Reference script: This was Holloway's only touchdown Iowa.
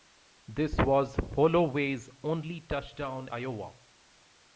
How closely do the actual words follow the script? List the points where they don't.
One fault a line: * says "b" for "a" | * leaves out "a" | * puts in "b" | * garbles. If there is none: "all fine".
all fine